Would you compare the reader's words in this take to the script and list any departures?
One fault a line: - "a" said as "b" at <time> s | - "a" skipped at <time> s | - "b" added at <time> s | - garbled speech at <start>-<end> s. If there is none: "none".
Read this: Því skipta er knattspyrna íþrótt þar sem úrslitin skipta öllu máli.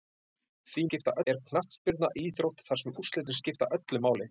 none